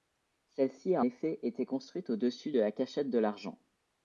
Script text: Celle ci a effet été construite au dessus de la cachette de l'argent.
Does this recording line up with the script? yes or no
yes